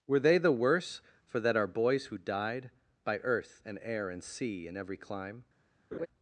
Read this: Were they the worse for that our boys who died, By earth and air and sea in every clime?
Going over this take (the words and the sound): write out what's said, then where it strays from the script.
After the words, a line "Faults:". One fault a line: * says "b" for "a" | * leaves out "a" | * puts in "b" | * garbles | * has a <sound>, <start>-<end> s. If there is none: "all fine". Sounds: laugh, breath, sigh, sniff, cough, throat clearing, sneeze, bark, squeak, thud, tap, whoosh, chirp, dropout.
Were they the worse for that our boys who died, By earth and air and sea in every clime?
Faults:
* has a laugh, 5.9-6.1 s